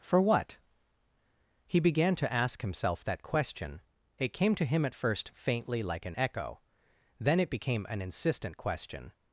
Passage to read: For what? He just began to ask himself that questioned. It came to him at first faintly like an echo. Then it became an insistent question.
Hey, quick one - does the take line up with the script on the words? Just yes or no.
no